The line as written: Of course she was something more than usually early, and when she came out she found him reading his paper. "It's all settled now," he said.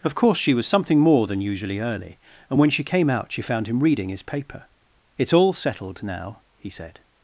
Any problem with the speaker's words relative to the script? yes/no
no